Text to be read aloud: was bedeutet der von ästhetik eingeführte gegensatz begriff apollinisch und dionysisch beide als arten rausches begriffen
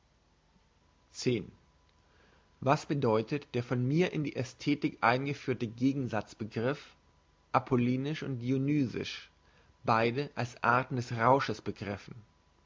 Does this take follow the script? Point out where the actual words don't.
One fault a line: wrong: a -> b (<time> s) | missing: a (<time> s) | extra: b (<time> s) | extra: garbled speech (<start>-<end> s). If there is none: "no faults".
extra: mir in die (3.9 s)
extra: des (10.9 s)